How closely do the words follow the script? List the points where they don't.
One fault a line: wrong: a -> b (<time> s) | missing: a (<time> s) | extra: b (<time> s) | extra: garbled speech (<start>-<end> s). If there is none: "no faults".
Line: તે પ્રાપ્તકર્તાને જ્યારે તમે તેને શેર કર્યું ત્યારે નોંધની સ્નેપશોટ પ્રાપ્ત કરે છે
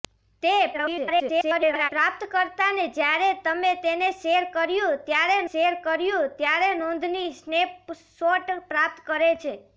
extra: garbled speech (0.7-1.9 s)
extra: શેર કર્યું ત્યારે (5.5 s)